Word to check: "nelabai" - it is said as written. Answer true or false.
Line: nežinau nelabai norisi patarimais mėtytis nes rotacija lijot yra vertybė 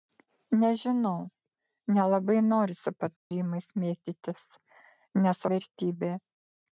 true